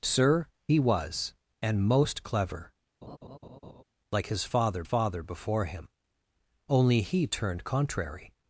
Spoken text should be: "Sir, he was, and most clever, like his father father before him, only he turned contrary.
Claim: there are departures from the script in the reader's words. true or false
false